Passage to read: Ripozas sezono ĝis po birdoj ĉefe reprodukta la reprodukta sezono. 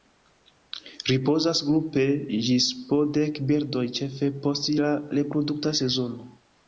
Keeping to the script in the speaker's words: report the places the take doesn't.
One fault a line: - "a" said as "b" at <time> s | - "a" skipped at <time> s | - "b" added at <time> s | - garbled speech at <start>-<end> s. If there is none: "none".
- "sezono" said as "grupe" at 1.7 s
- "dek" added at 3.2 s
- "reprodukta" said as "post" at 4.5 s